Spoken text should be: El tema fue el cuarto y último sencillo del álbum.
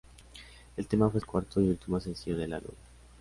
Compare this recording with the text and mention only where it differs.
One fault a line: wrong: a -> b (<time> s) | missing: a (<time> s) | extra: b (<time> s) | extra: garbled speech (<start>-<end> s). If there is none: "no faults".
no faults